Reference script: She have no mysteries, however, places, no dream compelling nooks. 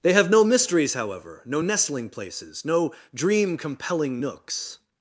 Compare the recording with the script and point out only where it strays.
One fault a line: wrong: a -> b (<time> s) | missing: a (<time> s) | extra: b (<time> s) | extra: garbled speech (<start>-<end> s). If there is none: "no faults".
wrong: She -> They (0.0 s)
extra: no nestling (1.4 s)